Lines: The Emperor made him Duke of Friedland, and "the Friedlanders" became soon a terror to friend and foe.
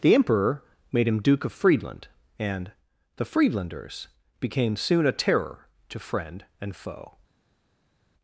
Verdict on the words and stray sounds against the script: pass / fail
pass